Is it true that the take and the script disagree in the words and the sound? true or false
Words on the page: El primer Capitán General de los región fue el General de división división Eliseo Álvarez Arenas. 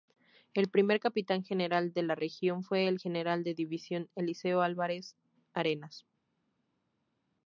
true